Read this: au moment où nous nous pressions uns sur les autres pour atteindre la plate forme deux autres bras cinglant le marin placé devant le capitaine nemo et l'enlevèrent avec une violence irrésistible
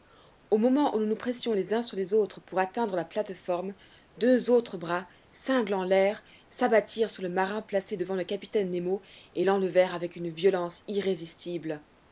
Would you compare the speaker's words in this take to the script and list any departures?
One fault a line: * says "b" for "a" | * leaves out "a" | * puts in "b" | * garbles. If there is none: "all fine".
* puts in "les"
* puts in "l'air s'abattirent sur"